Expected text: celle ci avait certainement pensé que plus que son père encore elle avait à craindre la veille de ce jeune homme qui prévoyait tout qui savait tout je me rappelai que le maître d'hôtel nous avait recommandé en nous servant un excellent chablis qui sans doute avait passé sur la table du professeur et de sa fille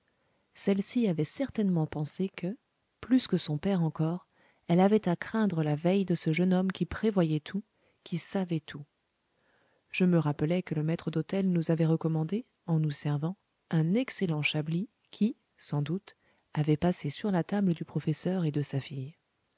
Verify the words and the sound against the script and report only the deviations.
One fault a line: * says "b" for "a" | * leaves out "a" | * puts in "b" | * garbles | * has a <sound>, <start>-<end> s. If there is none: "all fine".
all fine